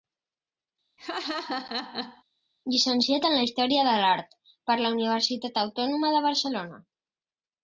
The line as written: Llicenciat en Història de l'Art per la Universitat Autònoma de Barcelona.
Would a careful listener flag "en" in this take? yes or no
no